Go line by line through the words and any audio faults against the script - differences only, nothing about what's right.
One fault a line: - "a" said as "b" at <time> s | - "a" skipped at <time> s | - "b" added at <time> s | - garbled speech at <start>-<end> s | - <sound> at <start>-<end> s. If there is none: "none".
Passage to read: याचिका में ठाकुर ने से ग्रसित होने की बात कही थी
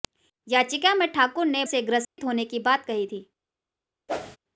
- dropout at 2.0-2.2 s
- whoosh at 4.1-4.4 s